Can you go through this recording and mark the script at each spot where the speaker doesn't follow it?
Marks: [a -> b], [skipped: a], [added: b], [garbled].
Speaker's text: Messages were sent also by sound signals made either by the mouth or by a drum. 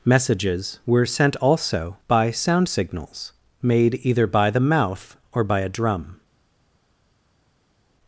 Messages were sent also by sound signals made either by the mouth or by a drum.